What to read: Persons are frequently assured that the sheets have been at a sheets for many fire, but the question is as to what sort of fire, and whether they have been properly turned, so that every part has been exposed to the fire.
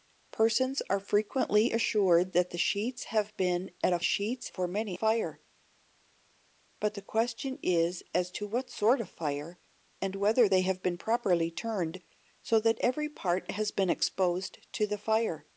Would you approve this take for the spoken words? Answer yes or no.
yes